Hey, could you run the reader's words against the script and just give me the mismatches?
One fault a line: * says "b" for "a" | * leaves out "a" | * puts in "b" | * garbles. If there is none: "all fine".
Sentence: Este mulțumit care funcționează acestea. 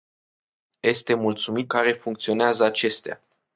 all fine